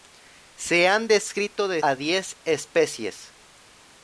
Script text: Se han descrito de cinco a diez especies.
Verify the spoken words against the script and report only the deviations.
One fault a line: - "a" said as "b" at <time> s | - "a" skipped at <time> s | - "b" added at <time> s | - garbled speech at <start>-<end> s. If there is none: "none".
- "cinco" skipped at 1.8 s